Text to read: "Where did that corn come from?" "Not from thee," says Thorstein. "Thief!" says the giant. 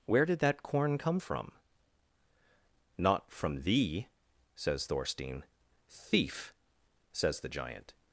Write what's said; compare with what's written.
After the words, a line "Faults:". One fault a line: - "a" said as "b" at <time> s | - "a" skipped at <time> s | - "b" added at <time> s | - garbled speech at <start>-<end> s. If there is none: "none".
"Where did that corn come from?" "Not from thee," says Thorstein. "Thief!" says the giant.
Faults:
none